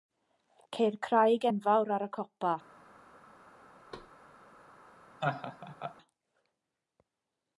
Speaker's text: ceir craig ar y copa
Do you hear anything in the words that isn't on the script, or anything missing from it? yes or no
yes